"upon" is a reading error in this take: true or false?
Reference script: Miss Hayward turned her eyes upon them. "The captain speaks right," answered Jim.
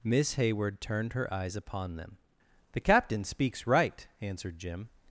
false